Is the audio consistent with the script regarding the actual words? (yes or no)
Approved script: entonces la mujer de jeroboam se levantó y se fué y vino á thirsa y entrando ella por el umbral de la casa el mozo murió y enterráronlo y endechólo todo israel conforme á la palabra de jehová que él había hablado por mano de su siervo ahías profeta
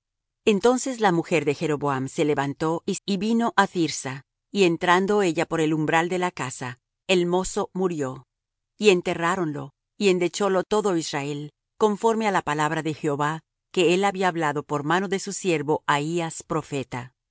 no